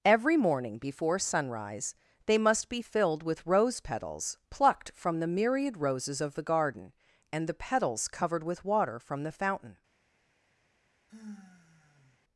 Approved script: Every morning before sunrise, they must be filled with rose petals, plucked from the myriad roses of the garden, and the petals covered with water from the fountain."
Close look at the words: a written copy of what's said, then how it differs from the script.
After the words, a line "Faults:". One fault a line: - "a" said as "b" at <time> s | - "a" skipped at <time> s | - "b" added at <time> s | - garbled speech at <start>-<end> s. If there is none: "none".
Every morning before sunrise, they must be filled with rose petals, plucked from the myriad roses of the garden, and the petals covered with water from the fountain."
Faults:
none